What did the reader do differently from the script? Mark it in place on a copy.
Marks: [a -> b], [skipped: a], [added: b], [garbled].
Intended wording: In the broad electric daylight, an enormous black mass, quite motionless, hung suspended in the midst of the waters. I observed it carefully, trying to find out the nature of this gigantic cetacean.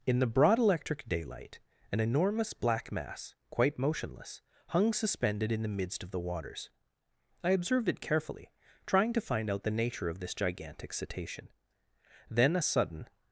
In the broad electric daylight, an enormous black mass, quite motionless, hung suspended in the midst of the waters. I observed it carefully, trying to find out the nature of this gigantic cetacean. [added: Then a sudden]